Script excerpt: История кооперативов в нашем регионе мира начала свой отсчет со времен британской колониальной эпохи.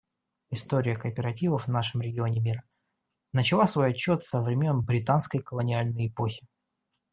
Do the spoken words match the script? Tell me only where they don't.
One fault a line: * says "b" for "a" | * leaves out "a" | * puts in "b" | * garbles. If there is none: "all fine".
all fine